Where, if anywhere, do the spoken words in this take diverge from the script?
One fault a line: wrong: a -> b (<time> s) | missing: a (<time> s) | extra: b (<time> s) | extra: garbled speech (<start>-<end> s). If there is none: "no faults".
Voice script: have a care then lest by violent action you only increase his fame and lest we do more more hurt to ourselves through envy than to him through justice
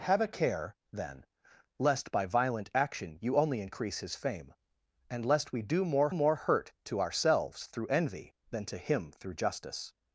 no faults